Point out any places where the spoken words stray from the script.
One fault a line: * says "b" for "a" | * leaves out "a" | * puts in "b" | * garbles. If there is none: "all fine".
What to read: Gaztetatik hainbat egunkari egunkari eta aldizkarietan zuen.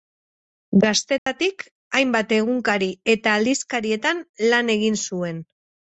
* leaves out "egunkari"
* puts in "lan egin"